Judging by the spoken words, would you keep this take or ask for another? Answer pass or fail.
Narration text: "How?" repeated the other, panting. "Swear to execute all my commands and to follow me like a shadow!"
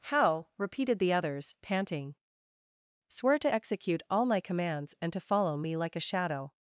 fail